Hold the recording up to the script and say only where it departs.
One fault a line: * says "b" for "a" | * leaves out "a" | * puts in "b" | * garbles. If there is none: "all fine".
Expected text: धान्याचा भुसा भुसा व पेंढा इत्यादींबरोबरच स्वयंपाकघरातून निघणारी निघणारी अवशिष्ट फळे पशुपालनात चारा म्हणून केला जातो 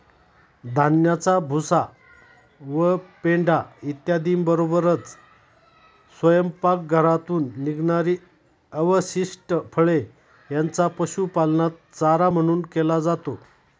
* leaves out "भुसा"
* leaves out "निघणारी"
* puts in "यांचा"